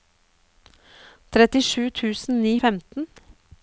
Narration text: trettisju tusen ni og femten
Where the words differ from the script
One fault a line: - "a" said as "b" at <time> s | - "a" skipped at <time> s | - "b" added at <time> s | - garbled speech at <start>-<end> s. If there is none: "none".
none